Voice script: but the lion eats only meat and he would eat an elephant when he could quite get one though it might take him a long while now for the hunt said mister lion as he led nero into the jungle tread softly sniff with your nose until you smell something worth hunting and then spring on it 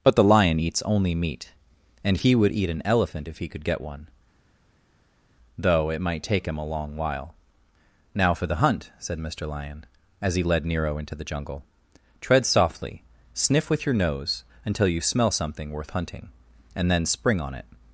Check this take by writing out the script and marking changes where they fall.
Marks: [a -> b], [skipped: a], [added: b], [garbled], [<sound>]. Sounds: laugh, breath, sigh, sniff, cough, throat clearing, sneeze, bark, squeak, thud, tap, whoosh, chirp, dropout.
but the lion eats only meat and he would eat an elephant [when -> if] he could [skipped: quite] get one though it might take him a long while now for the hunt said mister lion as he led nero into the jungle tread softly sniff with your nose until you smell something worth hunting and then spring on it